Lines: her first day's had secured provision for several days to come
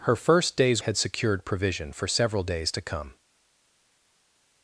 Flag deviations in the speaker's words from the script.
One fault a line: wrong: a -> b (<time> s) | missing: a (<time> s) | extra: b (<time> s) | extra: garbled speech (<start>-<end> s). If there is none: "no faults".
no faults